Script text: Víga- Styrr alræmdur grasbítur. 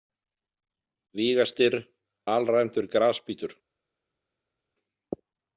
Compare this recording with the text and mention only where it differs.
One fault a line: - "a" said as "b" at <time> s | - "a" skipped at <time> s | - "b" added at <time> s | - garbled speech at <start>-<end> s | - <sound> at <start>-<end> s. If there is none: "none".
none